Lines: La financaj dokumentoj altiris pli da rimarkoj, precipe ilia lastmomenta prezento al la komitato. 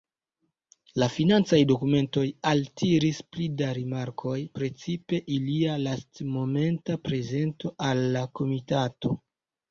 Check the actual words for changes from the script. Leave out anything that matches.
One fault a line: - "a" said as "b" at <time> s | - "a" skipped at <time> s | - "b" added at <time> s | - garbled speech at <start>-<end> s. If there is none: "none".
none